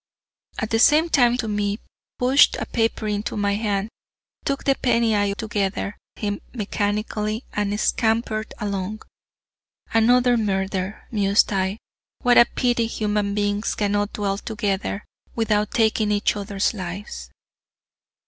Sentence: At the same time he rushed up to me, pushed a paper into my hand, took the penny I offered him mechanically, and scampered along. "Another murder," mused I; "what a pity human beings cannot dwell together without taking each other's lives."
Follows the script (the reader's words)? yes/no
no